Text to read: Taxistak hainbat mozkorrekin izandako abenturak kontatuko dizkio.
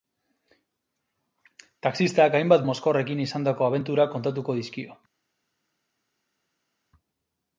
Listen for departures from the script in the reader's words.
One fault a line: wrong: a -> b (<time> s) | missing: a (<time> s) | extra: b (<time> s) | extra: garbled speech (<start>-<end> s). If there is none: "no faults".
no faults